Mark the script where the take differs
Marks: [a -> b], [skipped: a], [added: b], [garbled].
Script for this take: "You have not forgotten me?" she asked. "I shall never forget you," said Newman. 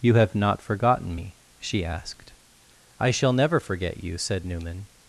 "You have not forgotten me?" she asked. "I shall never forget you," said Newman.